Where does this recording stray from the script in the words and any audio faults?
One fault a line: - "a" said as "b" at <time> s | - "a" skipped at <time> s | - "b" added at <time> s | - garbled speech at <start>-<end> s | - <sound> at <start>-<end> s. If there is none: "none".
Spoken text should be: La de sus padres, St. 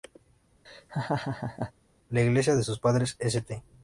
- laugh at 0.7-1.7 s
- "iglesia" added at 2.2 s